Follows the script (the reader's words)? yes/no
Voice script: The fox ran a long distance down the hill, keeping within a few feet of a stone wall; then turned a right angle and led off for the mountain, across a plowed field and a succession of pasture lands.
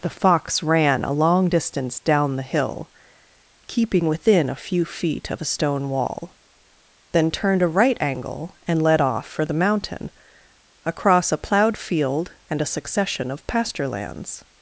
yes